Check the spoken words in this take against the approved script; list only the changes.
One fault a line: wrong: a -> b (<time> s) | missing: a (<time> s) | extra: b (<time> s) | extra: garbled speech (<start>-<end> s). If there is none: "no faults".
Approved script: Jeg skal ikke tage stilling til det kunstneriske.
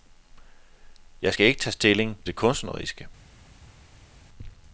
missing: til (2.2 s)